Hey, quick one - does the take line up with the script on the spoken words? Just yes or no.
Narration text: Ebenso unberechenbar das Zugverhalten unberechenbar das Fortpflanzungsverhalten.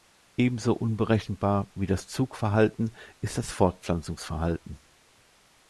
no